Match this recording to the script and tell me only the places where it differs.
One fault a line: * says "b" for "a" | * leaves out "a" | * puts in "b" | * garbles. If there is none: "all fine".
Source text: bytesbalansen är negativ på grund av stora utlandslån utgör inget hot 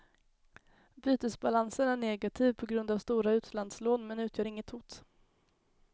* puts in "men"